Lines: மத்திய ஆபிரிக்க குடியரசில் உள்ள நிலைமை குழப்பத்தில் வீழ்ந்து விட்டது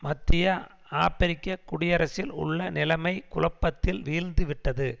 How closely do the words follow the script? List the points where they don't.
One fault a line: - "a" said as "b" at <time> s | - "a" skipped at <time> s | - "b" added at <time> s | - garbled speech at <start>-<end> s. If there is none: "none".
none